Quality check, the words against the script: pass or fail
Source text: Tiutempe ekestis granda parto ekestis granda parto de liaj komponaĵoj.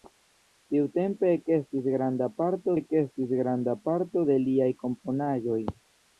pass